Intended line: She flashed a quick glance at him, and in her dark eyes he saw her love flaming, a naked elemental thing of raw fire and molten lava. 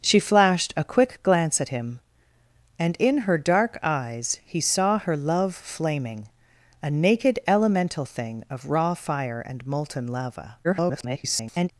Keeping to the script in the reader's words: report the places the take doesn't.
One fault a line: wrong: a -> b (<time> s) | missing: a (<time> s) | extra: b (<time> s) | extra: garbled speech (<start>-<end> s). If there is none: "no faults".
extra: garbled speech (10.6-11.7 s)